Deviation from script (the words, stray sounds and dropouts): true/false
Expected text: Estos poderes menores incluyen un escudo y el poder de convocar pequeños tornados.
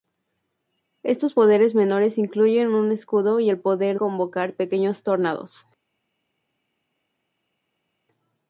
true